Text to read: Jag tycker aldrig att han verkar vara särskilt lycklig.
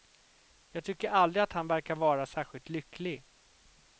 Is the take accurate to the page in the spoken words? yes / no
yes